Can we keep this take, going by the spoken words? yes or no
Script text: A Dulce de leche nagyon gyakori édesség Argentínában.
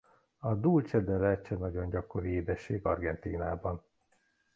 yes